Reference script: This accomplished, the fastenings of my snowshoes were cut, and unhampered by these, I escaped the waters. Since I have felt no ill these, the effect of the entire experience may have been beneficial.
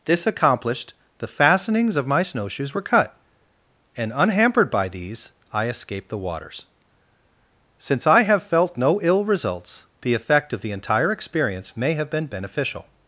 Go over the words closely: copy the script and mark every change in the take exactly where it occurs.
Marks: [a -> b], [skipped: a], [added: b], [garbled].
This accomplished, the fastenings of my snowshoes were cut, and unhampered by these, I escaped the waters. Since I have felt no ill [these, -> results] the effect of the entire experience may have been beneficial.